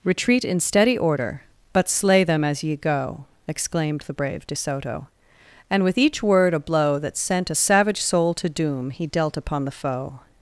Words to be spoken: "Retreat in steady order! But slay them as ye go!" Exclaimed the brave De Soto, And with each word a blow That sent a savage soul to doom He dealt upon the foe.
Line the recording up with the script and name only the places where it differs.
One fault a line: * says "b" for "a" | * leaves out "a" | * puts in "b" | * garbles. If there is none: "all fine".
all fine